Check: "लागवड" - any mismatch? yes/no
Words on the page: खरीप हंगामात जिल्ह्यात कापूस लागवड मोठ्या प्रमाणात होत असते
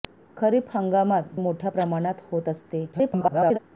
yes